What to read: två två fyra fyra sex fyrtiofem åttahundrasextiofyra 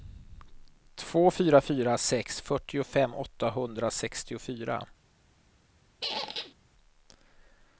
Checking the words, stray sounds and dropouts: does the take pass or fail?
fail